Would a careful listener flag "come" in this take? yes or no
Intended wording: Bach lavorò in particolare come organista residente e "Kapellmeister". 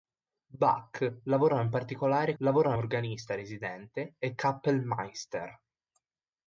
yes